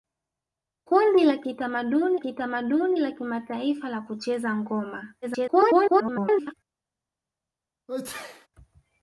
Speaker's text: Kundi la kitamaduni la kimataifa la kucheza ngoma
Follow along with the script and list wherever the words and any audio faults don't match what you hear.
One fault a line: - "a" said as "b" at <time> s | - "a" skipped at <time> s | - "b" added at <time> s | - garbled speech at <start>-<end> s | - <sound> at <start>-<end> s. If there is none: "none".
- "kitamaduni" added at 2.2 s
- garbled speech at 5.2-6.5 s
- sneeze at 7.9-8.5 s